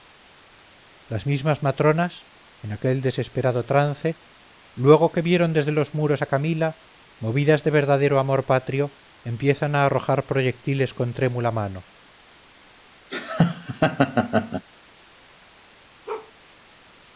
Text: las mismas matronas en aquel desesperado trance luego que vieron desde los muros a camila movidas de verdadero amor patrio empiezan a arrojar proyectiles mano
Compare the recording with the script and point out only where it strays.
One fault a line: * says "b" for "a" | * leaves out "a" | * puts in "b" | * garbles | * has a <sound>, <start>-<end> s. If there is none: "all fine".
* puts in "con trémula"
* has a laugh, 13.1-14.6 s
* has a bark, 16.1-16.3 s